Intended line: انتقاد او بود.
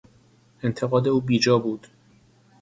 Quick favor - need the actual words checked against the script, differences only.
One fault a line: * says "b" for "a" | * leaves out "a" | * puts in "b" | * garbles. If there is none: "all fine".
* puts in "بیجا"